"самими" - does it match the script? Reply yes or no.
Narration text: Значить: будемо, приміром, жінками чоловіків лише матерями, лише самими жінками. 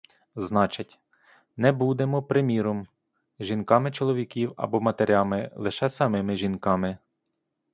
yes